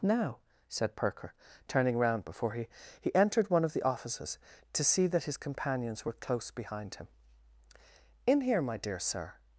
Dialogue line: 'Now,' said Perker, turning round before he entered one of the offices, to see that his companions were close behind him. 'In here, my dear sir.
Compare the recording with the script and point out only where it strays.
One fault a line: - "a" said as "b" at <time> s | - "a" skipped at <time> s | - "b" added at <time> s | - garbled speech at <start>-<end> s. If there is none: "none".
- "he" added at 3.0 s